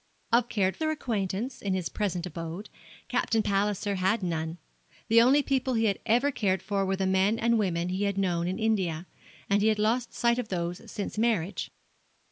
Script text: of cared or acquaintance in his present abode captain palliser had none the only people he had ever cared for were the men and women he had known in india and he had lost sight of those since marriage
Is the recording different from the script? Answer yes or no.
no